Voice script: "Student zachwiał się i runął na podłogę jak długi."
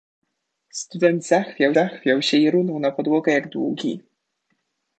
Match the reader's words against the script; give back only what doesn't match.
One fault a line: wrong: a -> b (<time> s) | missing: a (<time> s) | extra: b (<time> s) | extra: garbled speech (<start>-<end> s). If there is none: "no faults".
extra: zachwiał (1.7 s)